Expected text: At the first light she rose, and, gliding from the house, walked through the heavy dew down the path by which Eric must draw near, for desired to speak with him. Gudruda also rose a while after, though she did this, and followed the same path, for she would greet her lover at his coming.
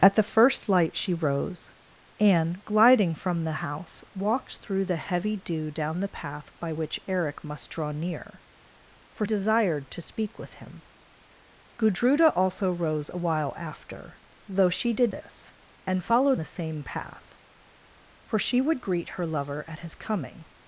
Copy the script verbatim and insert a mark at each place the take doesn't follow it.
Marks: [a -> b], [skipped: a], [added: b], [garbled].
At the first light she rose, and, gliding from the house, walked through the heavy dew down the path by which Eric must draw near, for desired to speak with him. Gudruda also rose a while after, though she did this, and followed the same path, for she would greet her lover at his coming.